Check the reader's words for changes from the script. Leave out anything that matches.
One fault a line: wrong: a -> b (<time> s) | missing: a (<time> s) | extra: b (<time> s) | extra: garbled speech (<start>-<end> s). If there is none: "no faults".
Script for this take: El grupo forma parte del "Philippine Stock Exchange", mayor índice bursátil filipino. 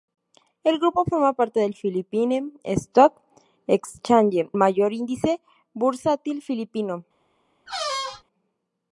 no faults